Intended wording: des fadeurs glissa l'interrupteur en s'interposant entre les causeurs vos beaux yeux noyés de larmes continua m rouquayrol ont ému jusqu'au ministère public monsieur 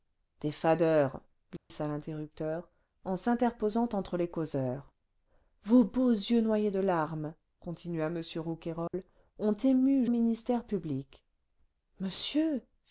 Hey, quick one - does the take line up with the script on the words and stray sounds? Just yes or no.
no